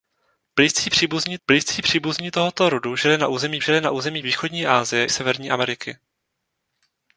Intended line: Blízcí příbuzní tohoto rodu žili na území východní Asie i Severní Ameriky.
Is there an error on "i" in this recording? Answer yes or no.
yes